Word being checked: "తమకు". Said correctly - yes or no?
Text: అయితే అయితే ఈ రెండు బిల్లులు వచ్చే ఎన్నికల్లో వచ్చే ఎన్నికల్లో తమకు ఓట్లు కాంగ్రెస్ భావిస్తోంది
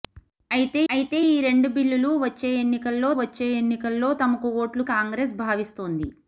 yes